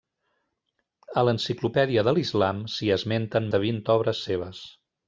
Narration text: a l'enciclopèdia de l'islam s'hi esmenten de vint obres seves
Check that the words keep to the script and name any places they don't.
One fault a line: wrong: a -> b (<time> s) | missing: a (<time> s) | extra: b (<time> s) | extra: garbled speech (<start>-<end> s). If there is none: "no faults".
no faults